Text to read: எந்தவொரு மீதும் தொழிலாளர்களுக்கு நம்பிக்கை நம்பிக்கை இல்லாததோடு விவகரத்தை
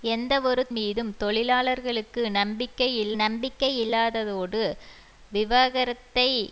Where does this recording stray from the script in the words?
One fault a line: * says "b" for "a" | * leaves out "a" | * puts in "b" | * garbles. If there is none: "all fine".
all fine